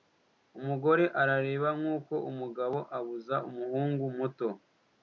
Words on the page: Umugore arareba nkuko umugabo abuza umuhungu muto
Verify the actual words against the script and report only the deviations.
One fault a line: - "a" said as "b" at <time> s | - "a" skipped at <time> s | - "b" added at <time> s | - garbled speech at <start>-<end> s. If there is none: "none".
none